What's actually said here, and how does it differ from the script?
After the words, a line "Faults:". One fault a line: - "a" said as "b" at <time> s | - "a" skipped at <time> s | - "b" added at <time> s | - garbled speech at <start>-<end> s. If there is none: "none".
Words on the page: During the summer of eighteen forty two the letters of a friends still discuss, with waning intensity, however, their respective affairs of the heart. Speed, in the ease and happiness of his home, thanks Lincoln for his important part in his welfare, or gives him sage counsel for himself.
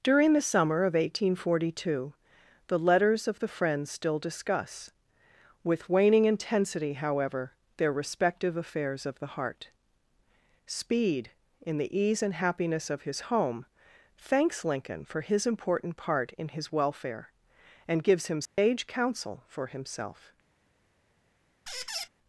During the summer of eighteen forty two the letters of the friends still discuss, with waning intensity, however, their respective affairs of the heart. Speed, in the ease and happiness of his home, thanks Lincoln for his important part in his welfare, and gives him sage counsel for himself.
Faults:
- "a" said as "the" at 3.4 s
- "or" said as "and" at 17.9 s